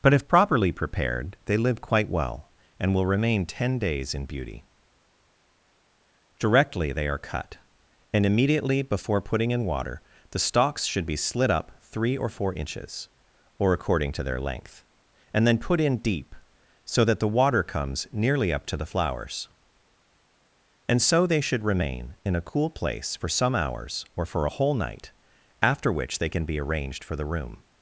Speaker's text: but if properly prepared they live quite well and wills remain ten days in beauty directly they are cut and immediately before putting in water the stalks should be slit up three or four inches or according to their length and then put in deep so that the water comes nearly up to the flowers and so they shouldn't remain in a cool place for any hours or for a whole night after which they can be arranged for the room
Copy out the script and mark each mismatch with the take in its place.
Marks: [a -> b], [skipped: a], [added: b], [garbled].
but if properly prepared they live quite well and [wills -> will] remain ten days in beauty directly they are cut and immediately before putting in water the stalks should be slit up three or four inches or according to their length and then put in deep so that the water comes nearly up to the flowers and so they [shouldn't -> should] remain in a cool place for [any -> some] hours or for a whole night after which they can be arranged for the room